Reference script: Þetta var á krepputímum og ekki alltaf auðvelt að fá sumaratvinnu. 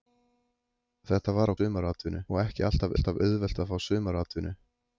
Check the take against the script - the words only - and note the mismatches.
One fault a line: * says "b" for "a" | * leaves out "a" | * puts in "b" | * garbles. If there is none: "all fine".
* says "sumaratvinnu" for "krepputímum"
* puts in "alltaf"